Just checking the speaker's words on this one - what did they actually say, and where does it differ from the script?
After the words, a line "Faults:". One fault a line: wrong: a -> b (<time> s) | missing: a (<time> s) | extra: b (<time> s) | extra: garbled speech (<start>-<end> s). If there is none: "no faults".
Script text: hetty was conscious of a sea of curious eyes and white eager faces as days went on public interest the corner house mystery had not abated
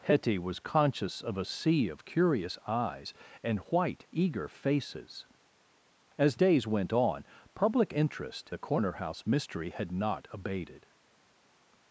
hetty was conscious of a sea of curious eyes and white eager faces as days went on public interest the corner house mystery had not abated
Faults:
no faults